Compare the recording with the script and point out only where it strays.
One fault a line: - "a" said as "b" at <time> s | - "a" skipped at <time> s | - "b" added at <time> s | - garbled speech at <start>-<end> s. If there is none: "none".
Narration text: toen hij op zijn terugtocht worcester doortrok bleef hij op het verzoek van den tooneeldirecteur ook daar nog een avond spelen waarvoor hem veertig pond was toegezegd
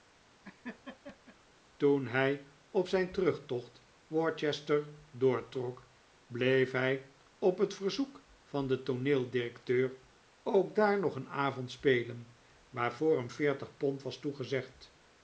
none